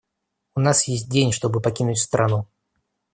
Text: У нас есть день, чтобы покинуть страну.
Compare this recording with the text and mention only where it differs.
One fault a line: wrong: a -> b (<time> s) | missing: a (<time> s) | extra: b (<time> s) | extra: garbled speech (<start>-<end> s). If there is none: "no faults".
no faults